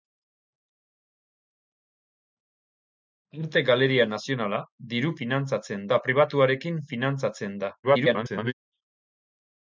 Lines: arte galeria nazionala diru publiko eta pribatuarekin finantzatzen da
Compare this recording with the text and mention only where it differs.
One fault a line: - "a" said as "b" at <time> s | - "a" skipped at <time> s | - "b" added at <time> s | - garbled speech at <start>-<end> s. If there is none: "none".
- "publiko" said as "finantzatzen" at 5.2 s
- garbled speech at 7.8-8.5 s